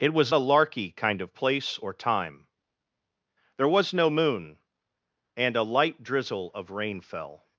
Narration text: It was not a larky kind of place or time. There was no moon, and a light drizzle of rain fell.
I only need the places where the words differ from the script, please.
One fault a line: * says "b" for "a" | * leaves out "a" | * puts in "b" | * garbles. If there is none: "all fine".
* leaves out "not"